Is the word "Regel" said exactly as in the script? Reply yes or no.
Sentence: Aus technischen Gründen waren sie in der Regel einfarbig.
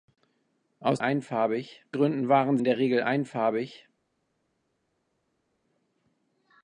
yes